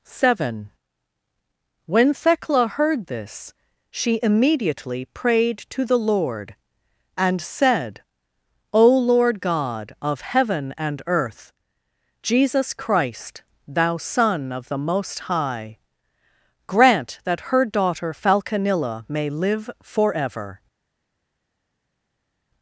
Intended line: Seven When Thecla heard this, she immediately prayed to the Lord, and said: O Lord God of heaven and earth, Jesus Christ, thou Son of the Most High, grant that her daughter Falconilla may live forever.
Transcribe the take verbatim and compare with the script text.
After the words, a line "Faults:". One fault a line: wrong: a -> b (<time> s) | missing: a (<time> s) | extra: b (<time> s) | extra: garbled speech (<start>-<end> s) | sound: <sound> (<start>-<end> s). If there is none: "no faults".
Seven When Thecla heard this, she immediately prayed to the Lord, and said: O Lord God of heaven and earth, Jesus Christ, thou Son of the Most High, grant that her daughter Falconilla may live forever.
Faults:
no faults